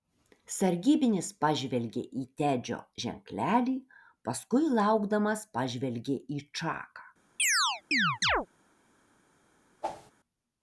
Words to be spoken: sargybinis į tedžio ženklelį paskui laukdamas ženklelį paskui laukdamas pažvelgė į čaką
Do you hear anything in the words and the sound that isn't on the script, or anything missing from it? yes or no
yes